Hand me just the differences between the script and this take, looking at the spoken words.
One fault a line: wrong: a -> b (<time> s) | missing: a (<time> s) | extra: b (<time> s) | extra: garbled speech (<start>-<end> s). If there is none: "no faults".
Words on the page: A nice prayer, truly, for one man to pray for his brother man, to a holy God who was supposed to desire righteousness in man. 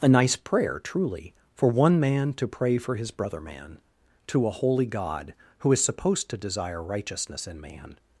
wrong: was -> is (5.7 s)